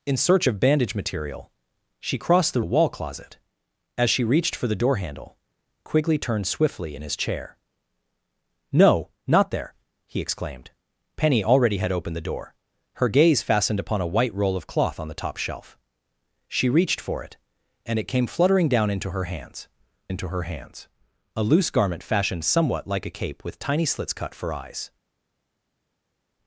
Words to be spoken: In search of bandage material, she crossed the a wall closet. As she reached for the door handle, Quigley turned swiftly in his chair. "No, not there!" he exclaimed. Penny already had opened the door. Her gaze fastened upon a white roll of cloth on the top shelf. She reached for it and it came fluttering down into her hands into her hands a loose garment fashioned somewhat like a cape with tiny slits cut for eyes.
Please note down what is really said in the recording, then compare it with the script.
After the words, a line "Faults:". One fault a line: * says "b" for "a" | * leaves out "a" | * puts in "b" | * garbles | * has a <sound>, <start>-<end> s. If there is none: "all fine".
In search of bandage material, she crossed the a wall closet. As she reached for the door handle, Quigley turned swiftly in his chair. "No, not there!" he exclaimed. Penny already had opened the door. Her gaze fastened upon a white roll of cloth on the top shelf. She reached for it and it came fluttering down into her hands into her hands a loose garment fashioned somewhat like a cape with tiny slits cut for eyes.
Faults:
all fine